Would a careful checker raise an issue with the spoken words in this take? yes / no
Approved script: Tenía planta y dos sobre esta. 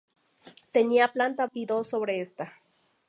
no